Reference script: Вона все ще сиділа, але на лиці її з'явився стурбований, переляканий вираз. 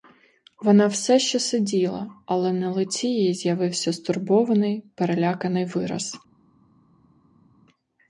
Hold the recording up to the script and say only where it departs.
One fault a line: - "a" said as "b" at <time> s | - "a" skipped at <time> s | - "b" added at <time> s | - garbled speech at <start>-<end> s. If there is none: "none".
none